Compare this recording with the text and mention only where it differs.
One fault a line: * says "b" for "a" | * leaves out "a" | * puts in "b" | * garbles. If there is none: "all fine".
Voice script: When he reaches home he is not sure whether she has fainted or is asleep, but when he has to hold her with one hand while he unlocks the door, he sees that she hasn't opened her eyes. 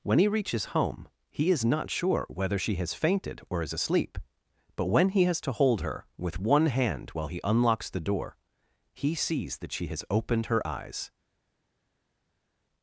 * says "has" for "hasn't"